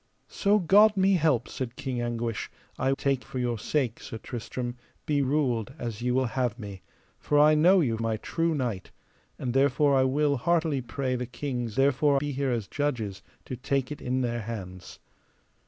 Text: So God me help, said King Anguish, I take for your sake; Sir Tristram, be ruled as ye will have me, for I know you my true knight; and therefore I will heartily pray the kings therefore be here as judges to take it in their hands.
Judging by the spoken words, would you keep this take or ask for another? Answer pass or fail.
pass